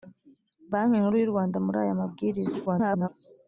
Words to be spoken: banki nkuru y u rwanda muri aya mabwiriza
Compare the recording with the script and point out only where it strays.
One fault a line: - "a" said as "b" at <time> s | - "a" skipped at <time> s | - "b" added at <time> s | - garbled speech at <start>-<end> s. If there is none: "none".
- garbled speech at 2.7-3.1 s